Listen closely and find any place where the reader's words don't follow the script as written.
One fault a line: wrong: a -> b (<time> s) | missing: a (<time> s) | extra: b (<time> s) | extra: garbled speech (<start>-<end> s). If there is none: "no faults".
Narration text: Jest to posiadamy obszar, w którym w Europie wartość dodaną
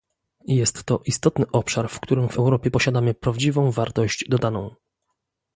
wrong: posiadamy -> istotny (1.1 s)
extra: posiadamy prawdziwą (2.7 s)